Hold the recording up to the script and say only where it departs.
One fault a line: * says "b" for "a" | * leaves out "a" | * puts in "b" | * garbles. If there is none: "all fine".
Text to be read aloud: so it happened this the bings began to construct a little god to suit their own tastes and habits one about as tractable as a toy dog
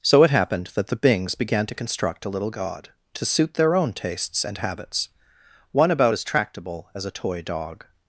* says "that" for "this"